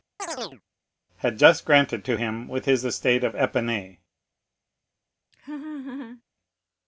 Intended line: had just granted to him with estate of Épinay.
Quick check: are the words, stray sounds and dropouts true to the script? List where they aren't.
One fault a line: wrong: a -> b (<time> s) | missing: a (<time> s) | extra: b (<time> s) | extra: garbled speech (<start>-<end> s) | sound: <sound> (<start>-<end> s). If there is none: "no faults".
sound: chirp (0.2-0.6 s)
extra: his (2.6 s)
sound: laugh (5.3-6.2 s)